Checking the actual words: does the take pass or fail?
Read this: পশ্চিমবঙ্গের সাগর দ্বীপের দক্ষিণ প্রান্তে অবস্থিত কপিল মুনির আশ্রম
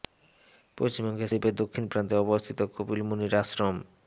fail